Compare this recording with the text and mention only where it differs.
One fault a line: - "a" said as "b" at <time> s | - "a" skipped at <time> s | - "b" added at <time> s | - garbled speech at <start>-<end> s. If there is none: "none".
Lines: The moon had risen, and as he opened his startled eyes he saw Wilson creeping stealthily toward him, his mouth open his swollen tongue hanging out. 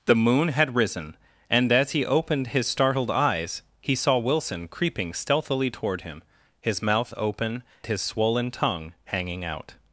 none